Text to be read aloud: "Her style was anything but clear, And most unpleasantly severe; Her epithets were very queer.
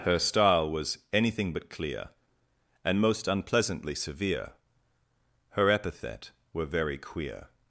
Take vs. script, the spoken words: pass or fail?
fail